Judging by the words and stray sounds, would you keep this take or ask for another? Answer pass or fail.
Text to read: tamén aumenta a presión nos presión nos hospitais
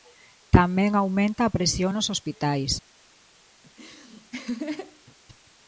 fail